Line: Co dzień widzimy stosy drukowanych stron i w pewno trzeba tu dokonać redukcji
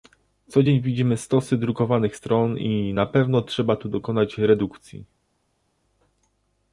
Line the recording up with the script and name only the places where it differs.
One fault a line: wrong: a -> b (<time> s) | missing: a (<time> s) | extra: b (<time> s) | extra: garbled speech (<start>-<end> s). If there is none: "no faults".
wrong: w -> na (2.9 s)